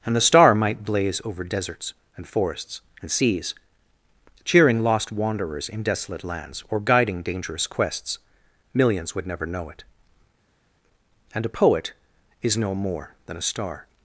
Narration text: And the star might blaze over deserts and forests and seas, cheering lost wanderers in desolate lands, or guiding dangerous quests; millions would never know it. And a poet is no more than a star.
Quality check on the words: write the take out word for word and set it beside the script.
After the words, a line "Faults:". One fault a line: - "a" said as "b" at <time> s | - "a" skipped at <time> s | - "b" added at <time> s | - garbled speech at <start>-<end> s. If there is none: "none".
And the star might blaze over deserts and forests and seas, cheering lost wanderers in desolate lands, or guiding dangerous quests; millions would never know it. And a poet is no more than a star.
Faults:
none